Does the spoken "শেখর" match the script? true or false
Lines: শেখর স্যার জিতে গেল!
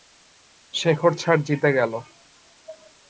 true